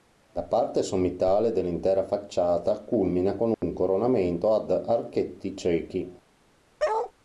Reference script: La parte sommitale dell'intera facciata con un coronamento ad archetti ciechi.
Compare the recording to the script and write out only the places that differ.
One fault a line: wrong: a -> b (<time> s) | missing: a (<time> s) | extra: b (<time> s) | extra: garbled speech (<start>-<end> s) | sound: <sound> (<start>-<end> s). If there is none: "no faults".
extra: culmina (2.8 s)
sound: dropout (3.5-3.6 s)
sound: bark (6.8-7.1 s)